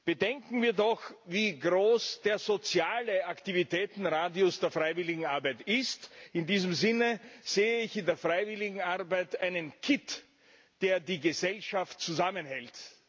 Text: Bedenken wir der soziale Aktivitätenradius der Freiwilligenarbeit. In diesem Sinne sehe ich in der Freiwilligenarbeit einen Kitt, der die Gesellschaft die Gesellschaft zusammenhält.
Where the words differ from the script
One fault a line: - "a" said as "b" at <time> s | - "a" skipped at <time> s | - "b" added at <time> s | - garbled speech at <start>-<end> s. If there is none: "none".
- "doch wie groß" added at 0.7 s
- "ist" added at 5.6 s
- "die Gesellschaft" skipped at 12.0 s